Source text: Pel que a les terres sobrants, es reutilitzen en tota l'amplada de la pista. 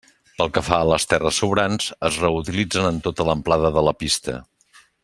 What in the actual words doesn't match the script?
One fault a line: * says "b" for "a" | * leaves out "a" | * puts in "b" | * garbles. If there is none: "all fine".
* puts in "fa"